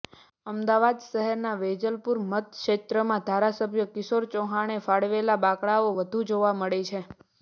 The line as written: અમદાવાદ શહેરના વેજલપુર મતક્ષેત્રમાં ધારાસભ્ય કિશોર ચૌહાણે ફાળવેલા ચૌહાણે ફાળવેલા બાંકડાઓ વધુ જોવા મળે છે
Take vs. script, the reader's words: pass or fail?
fail